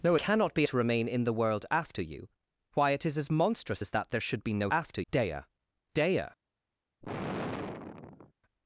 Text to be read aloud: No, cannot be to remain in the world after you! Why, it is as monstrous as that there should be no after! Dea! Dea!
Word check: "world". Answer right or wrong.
right